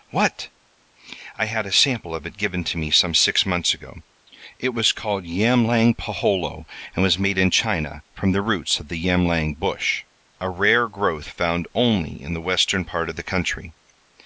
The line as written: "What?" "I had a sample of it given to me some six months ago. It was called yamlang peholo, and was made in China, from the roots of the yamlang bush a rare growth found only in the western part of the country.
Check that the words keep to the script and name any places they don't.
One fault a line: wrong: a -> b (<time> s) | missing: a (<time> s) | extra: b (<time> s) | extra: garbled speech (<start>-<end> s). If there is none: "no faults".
no faults